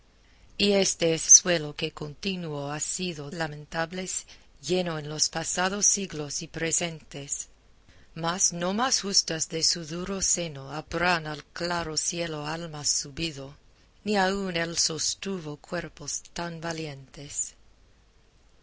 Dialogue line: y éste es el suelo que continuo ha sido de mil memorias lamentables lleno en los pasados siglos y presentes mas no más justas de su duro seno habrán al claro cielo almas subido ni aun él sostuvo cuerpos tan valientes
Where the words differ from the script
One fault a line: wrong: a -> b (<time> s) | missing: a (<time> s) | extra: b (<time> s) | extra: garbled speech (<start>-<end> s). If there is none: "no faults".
missing: el (1.3 s)
missing: de mil memorias (3.3 s)